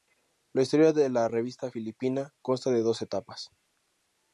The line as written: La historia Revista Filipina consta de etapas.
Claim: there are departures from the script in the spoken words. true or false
true